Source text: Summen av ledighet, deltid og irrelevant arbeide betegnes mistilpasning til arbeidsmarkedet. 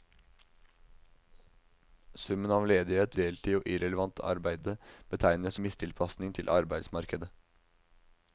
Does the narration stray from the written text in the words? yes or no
no